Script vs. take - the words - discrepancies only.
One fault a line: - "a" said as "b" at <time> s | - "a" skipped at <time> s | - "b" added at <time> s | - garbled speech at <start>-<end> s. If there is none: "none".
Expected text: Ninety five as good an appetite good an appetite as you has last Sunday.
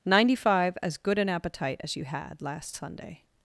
- "good an appetite" skipped at 1.8 s
- "has" said as "had" at 2.0 s